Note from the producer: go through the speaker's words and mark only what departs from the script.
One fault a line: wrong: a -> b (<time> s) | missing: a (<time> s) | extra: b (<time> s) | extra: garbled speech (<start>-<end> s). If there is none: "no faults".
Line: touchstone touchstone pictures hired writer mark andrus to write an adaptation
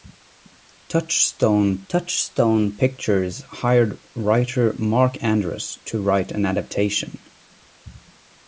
no faults